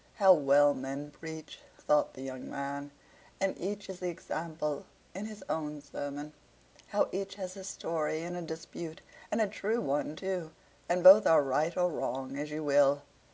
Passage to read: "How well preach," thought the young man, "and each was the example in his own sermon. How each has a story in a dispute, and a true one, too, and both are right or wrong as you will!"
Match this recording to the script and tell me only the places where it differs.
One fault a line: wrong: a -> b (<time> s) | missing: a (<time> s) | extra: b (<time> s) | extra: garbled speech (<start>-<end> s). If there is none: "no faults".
extra: men (0.7 s)
wrong: was -> is (3.9 s)